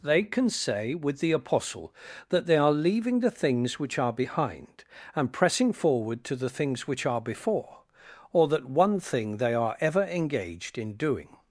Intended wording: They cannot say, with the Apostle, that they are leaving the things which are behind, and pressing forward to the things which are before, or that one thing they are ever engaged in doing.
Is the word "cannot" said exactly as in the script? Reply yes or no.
no